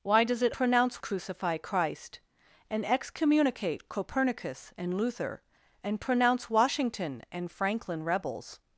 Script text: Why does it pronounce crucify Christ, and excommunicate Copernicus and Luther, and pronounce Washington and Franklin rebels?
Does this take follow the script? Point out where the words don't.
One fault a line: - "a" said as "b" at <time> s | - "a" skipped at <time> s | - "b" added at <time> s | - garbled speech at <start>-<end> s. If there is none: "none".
none